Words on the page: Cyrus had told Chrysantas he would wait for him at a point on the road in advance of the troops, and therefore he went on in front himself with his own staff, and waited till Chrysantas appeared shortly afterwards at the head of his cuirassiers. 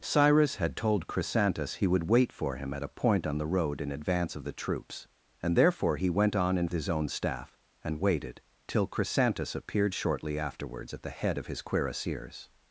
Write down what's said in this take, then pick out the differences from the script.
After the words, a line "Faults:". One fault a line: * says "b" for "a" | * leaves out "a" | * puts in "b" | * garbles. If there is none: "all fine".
Cyrus had told Chrysantas he would wait for him at a point on the road in advance of the troops, and therefore he went on in his own staff, and waited till Chrysantas appeared shortly afterwards at the head of his cuirassiers.
Faults:
* leaves out "front himself with"